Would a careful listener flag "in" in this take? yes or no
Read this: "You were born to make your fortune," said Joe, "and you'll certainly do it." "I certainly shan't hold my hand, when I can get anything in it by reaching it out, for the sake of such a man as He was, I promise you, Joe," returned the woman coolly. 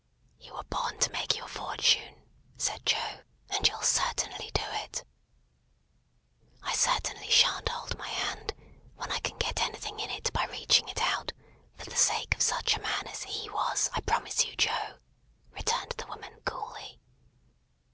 no